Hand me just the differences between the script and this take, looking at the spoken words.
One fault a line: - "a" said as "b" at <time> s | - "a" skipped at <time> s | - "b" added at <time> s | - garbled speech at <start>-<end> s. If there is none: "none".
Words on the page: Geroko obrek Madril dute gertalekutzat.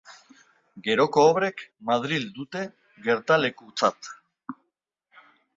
none